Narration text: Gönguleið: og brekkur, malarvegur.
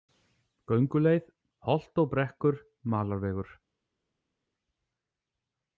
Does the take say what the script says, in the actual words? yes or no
no